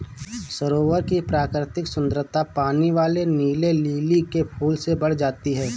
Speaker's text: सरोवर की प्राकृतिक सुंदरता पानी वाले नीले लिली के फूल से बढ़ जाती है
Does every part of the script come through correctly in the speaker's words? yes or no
yes